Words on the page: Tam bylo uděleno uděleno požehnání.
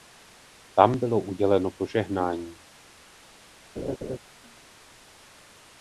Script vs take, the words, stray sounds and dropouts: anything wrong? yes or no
yes